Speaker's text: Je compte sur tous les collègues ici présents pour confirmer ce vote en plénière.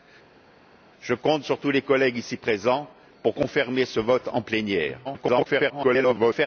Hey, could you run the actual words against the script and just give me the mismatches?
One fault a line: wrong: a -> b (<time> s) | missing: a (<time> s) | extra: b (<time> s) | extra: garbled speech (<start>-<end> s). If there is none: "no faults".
extra: garbled speech (5.0-6.5 s)